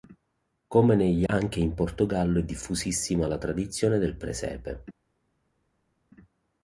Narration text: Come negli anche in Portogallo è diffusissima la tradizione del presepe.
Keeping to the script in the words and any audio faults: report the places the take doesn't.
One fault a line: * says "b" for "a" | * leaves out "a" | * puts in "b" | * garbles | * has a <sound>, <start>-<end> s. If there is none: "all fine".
all fine